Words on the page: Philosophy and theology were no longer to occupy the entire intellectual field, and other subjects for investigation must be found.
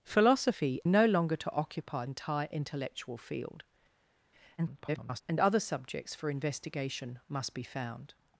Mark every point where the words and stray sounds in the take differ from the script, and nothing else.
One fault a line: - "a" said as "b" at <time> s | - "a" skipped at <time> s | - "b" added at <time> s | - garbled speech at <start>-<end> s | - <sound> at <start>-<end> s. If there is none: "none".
- "and theology were" skipped at 0.8 s
- "the" skipped at 2.0 s
- garbled speech at 4.6-5.2 s